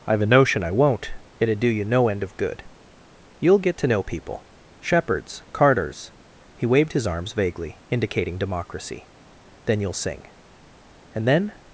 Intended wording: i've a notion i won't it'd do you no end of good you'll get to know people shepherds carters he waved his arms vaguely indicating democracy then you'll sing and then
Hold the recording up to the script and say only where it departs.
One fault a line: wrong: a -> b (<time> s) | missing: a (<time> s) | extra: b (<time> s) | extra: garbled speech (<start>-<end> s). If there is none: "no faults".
no faults